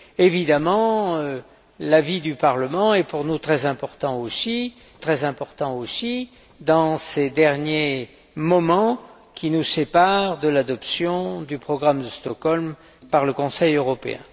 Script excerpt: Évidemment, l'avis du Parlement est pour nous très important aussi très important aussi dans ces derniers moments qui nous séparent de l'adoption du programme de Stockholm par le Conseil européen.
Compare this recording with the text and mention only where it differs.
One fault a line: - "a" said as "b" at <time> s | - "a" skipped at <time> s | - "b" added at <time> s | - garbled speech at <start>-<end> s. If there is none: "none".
none